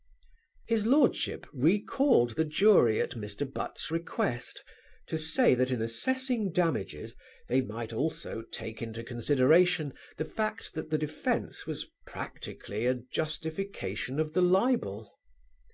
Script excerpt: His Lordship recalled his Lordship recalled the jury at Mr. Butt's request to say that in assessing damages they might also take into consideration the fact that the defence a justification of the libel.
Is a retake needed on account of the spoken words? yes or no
yes